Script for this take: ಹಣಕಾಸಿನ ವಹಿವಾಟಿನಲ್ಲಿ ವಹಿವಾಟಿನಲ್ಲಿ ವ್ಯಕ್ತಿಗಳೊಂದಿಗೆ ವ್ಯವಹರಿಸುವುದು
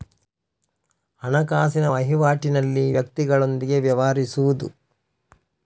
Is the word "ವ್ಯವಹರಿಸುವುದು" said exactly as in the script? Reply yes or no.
yes